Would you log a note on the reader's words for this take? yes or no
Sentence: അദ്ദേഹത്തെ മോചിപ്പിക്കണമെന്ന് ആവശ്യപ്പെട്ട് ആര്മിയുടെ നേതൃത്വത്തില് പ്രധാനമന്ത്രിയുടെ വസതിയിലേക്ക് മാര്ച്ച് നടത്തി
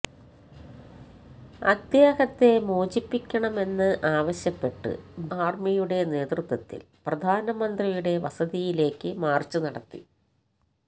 no